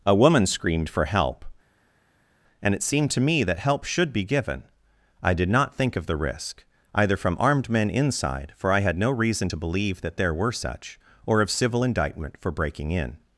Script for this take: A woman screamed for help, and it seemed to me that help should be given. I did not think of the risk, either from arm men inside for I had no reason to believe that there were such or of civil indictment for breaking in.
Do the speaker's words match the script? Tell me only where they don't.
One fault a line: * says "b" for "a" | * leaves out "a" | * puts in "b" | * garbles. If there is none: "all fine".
* says "armed" for "arm"